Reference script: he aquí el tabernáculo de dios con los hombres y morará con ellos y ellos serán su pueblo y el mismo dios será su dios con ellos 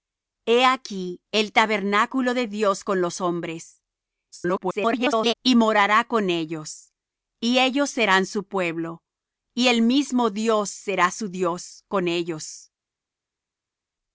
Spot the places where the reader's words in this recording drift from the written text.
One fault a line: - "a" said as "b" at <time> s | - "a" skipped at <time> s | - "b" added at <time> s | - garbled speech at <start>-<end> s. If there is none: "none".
- garbled speech at 4.3-5.4 s